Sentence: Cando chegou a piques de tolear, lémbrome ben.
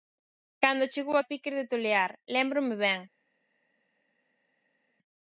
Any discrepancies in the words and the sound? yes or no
no